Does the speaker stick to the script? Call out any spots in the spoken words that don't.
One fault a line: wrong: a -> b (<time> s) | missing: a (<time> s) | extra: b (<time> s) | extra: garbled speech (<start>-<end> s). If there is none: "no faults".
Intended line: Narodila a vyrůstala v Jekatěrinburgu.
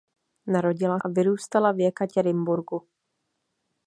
no faults